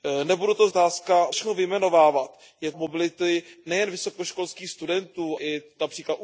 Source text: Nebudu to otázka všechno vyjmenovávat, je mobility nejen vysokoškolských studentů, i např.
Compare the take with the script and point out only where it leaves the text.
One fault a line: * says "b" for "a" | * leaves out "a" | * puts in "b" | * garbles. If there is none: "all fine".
all fine